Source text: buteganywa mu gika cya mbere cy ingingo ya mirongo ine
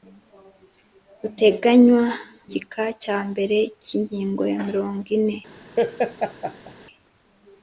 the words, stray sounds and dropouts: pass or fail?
fail